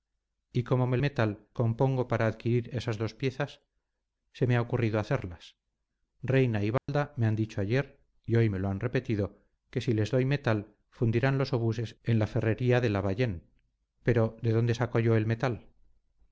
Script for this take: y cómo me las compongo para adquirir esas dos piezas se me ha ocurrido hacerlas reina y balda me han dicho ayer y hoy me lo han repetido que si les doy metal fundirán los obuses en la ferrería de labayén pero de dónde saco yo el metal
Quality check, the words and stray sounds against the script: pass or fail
fail